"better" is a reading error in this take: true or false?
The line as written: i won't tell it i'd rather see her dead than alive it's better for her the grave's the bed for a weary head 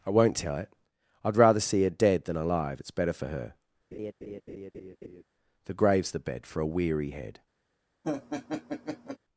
false